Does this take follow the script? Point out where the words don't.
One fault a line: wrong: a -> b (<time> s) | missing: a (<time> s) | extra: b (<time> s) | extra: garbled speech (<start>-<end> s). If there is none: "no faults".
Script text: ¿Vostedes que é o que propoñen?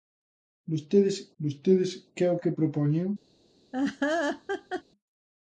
extra: vostedes (1.4 s)